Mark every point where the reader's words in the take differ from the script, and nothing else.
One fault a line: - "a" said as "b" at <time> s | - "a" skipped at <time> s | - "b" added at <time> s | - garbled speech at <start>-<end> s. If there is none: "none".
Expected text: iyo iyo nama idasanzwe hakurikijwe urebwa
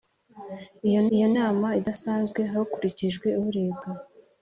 none